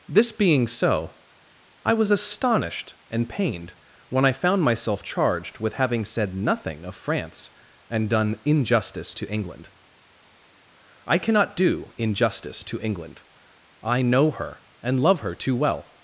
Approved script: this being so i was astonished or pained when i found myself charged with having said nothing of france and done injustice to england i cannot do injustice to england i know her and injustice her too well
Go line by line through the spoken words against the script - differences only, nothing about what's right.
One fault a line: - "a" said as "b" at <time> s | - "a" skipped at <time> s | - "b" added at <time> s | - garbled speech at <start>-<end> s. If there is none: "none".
- "or" said as "and" at 3.1 s
- "injustice" said as "love" at 15.0 s